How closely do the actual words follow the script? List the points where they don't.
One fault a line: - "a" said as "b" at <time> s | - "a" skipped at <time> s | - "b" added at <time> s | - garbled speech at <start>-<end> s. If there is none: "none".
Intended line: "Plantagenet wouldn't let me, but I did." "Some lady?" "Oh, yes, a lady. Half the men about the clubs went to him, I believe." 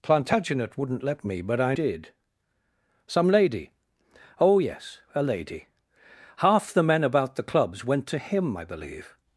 none